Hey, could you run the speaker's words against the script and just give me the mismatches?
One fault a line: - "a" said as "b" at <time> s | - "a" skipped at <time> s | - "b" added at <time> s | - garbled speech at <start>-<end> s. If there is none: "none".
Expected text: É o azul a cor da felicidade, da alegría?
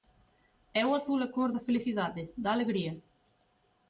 none